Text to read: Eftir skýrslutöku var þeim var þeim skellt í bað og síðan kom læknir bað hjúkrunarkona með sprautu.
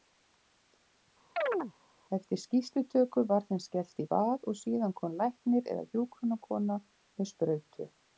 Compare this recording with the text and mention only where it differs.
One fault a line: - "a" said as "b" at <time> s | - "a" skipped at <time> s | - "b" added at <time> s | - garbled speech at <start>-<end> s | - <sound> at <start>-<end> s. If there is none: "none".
- chirp at 1.4-1.7 s
- "var þeim" skipped at 3.6 s
- "bað" said as "eða" at 5.7 s